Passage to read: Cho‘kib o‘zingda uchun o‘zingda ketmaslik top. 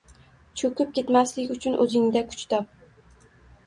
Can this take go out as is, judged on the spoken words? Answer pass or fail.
fail